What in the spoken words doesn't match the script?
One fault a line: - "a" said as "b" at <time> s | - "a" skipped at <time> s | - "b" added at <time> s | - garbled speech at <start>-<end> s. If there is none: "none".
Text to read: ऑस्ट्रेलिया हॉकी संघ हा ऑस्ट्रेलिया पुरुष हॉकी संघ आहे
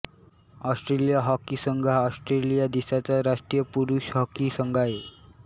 - "देशाचा राष्ट्रीय" added at 2.7 s